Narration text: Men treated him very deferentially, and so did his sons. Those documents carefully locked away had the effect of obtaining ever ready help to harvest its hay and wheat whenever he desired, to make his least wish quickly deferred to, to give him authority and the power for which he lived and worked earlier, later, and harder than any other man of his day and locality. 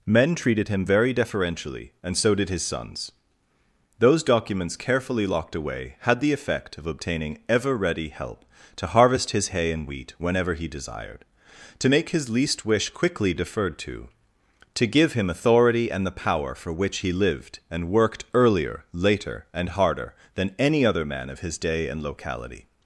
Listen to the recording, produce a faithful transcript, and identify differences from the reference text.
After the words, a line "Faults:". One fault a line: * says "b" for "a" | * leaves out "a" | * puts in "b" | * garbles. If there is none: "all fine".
Men treated him very deferentially, and so did his sons. Those documents carefully locked away had the effect of obtaining ever ready help to harvest his hay and wheat whenever he desired, to make his least wish quickly deferred to, to give him authority and the power for which he lived and worked earlier, later, and harder than any other man of his day and locality.
Faults:
* says "his" for "its"